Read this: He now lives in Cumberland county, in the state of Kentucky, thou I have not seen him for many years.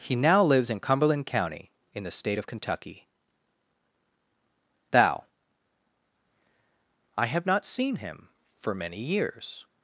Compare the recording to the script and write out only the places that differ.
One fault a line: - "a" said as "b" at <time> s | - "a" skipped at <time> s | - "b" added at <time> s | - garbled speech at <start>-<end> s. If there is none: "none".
none